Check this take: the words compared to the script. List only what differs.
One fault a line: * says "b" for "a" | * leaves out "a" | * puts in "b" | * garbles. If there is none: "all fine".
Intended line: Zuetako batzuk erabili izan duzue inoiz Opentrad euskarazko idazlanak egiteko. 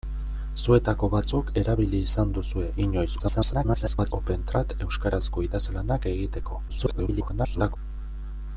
* garbles
* garbles